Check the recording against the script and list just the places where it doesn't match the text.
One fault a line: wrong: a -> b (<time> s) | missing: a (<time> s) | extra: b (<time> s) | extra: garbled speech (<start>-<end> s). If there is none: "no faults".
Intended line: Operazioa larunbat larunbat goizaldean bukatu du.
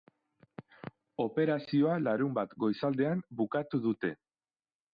missing: larunbat (2.6 s)
wrong: du -> dute (3.9 s)